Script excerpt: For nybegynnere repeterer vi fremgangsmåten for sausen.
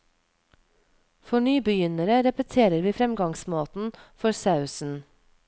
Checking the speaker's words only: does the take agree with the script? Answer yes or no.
yes